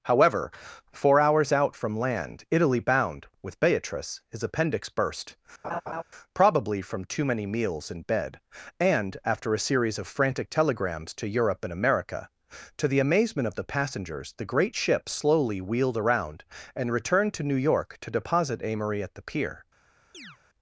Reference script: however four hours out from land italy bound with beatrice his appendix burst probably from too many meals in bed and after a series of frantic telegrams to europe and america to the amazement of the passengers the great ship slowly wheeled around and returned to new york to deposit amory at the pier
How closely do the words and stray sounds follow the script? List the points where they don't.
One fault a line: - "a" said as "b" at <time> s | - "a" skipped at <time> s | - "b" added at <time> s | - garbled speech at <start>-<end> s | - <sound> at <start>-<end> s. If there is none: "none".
- laugh at 5.6-6.0 s
- chirp at 20.1-20.4 s